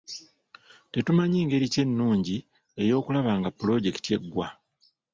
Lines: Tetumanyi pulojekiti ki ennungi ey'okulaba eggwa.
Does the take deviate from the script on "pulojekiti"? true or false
true